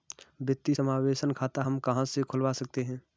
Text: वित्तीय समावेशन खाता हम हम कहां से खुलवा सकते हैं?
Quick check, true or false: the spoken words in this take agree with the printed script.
false